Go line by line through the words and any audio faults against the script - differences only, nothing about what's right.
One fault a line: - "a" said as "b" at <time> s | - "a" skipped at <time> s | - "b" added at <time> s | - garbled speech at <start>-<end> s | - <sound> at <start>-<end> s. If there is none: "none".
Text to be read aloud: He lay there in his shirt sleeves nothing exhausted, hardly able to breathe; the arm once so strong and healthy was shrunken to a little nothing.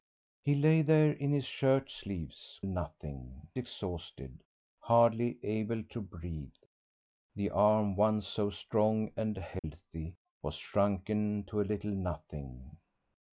- dropout at 9.6-9.6 s